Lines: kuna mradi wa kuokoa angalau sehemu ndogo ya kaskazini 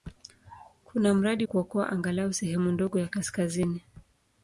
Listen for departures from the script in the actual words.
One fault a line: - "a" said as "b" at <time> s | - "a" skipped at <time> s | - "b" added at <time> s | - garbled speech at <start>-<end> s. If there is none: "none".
- "wa" skipped at 1.5 s